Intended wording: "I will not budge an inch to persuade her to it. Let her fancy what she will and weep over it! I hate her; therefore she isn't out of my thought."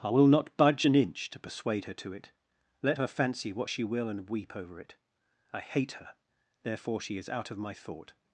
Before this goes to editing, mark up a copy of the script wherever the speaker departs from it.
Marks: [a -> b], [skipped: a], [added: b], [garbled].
"I will not budge an inch to persuade her to it. Let her fancy what she will and weep over it! I hate her; therefore she [isn't -> is] out of my thought."